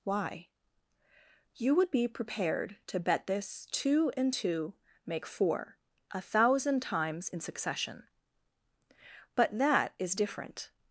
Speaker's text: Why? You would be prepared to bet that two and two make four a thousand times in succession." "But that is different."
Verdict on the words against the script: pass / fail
fail